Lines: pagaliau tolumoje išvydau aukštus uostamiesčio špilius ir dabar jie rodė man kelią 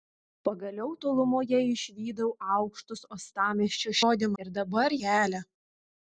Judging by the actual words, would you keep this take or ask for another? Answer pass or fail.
fail